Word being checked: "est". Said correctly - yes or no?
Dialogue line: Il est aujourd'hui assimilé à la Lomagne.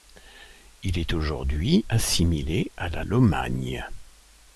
yes